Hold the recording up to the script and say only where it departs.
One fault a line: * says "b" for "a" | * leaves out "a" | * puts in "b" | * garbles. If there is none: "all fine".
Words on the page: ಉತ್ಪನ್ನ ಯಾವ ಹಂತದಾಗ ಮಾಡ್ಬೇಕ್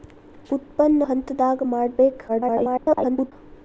* leaves out "ಯಾವ"
* garbles